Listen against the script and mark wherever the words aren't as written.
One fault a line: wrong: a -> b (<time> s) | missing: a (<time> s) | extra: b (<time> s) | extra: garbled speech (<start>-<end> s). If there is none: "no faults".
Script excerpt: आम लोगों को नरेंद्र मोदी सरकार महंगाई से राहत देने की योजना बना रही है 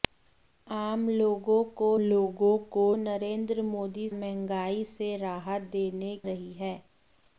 extra: लोगों को (2.0 s)
missing: सरकार (4.1 s)
missing: की योजना बना (6.2 s)